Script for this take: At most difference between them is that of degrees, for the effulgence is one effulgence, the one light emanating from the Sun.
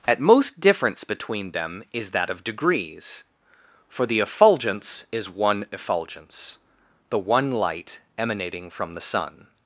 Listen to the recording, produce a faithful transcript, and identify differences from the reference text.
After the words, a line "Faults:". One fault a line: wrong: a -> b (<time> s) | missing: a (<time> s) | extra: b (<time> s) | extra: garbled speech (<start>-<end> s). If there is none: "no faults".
At most difference between them is that of degrees, for the effulgence is one effulgence, the one light emanating from the Sun.
Faults:
no faults